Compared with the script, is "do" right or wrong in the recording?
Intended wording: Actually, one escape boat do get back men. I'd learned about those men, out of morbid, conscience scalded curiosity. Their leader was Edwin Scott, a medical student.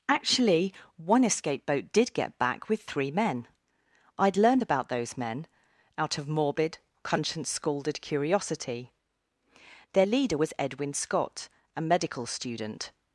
wrong